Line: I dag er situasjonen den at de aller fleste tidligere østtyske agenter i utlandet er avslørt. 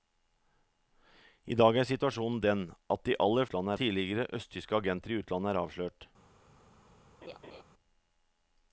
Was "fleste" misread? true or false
true